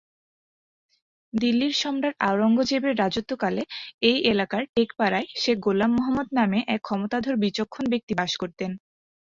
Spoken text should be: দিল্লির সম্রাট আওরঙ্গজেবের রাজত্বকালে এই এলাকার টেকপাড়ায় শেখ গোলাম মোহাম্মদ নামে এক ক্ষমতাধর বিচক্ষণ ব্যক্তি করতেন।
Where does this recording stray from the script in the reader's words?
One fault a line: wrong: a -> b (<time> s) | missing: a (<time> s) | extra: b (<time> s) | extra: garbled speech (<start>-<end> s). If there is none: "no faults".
extra: বাস (8.2 s)